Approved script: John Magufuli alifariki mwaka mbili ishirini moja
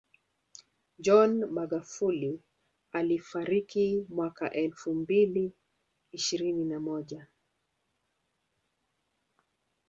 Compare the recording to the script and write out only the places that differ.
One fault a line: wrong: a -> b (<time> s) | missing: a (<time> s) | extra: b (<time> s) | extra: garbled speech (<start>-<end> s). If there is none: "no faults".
extra: elfu (4.5 s)
extra: na (6.7 s)